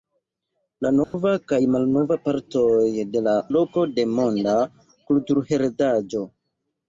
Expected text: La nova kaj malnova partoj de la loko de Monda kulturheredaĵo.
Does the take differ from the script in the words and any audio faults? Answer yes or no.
yes